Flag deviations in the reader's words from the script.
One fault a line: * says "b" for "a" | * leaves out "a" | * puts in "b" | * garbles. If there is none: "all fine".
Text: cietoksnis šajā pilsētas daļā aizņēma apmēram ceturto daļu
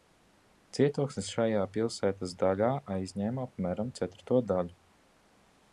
all fine